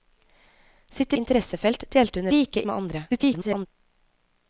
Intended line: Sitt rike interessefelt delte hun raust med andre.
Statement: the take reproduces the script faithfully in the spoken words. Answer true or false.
false